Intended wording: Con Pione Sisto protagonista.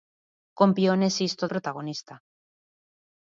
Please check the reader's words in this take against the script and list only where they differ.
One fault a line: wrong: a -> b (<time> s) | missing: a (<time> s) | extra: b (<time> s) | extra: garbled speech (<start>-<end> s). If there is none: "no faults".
no faults